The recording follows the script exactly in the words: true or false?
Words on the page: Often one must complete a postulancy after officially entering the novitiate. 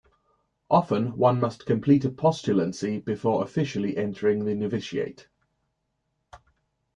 false